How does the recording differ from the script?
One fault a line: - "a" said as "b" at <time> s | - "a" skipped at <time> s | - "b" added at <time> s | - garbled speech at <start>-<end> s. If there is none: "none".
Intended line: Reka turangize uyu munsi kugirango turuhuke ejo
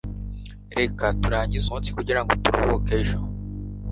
- "uyu" skipped at 1.7 s